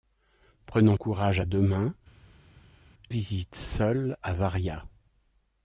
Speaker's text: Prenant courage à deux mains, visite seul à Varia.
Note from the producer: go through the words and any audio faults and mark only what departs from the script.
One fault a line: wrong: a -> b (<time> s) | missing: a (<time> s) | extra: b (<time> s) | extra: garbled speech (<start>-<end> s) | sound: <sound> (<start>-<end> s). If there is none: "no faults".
no faults